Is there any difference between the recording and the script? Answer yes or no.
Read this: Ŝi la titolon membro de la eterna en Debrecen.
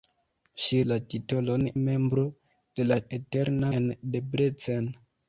no